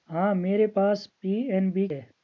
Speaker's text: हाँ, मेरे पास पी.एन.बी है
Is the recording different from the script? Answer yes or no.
no